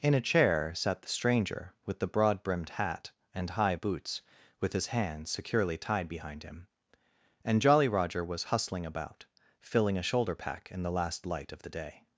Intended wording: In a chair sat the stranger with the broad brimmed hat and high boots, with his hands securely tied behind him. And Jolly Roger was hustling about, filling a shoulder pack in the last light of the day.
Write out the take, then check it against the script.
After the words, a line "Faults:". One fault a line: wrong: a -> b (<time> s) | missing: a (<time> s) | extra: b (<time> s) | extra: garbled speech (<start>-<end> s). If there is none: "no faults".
In a chair sat the stranger with the broad brimmed hat and high boots, with his hands securely tied behind him. And Jolly Roger was hustling about, filling a shoulder pack in the last light of the day.
Faults:
no faults